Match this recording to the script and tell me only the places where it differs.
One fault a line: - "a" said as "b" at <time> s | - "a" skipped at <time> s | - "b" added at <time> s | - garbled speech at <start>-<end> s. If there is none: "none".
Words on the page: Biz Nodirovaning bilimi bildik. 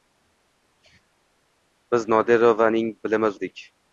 none